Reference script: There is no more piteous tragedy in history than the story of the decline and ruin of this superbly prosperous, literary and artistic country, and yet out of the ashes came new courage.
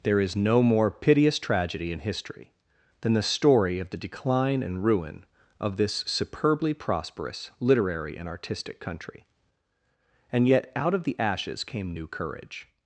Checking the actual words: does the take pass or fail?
pass